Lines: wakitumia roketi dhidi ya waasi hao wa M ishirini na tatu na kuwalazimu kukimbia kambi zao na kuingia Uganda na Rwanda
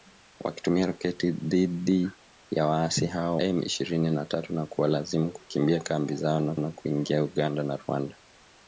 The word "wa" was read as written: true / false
false